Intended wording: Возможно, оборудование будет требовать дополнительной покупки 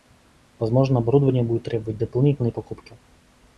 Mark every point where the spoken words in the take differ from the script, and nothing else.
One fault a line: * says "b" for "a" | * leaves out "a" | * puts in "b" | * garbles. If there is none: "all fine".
all fine